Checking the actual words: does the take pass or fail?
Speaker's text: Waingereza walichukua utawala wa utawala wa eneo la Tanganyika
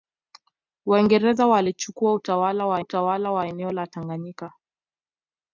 pass